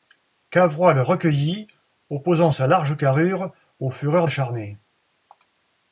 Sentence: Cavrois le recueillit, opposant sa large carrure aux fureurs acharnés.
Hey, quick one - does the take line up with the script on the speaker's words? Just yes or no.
yes